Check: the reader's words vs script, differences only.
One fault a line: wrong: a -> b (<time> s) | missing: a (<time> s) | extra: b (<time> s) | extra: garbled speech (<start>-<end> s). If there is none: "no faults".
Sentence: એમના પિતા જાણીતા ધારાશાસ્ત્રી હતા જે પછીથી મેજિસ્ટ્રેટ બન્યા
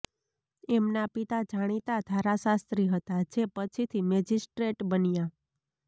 no faults